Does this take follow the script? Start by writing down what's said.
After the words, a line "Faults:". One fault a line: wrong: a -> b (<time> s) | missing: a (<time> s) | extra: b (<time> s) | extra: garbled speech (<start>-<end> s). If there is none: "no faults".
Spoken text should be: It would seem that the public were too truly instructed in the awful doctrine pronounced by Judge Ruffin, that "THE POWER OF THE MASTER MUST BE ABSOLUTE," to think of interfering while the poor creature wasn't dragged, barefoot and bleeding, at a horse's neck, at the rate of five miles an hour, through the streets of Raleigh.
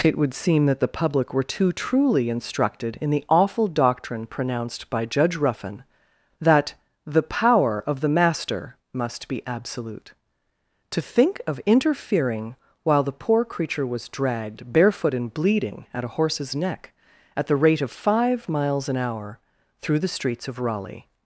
It would seem that the public were too truly instructed in the awful doctrine pronounced by Judge Ruffin, that "THE POWER OF THE MASTER MUST BE ABSOLUTE," to think of interfering while the poor creature was dragged, barefoot and bleeding, at a horse's neck, at the rate of five miles an hour, through the streets of Raleigh.
Faults:
wrong: wasn't -> was (13.8 s)